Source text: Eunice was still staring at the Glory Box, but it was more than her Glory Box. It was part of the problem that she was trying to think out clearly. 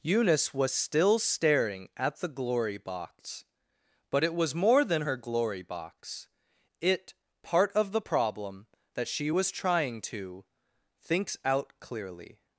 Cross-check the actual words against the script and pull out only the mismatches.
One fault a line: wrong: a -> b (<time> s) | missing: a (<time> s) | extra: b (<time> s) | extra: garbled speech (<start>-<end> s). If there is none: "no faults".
missing: was (7.1 s)
wrong: think -> thinks (11.0 s)